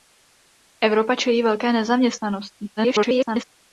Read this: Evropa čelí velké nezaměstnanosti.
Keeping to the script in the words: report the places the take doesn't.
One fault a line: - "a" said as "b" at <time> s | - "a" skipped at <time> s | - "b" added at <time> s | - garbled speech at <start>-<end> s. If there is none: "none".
- garbled speech at 2.8-3.4 s